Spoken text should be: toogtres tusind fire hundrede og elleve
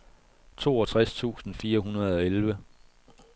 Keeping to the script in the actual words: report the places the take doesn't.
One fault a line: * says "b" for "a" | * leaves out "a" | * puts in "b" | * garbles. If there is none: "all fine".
all fine